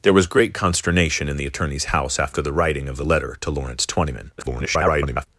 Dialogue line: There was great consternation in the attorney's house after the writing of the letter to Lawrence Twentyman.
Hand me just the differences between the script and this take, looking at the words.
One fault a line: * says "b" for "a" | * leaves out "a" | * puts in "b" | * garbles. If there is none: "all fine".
* garbles